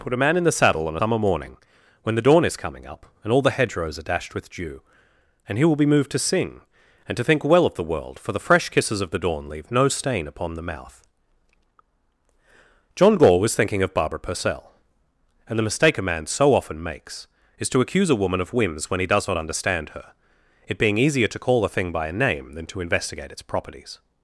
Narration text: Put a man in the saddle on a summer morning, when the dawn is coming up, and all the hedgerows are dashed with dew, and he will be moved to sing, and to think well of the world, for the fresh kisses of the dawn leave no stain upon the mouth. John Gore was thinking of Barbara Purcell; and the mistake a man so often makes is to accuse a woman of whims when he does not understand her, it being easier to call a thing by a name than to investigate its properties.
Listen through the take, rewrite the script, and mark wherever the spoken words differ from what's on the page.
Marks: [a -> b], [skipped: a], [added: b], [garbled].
Put a man in the saddle on [skipped: a] summer morning, when the dawn is coming up, and all the hedgerows are dashed with dew, and he will be moved to sing, and to think well of the world, for the fresh kisses of the dawn leave no stain upon the mouth. John Gore was thinking of Barbara Purcell; and the mistake a man so often makes is to accuse a woman of whims when he does not understand her, it being easier to call a thing by a name than to investigate its properties.